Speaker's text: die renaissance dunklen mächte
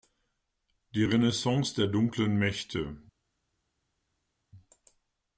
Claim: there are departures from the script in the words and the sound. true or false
true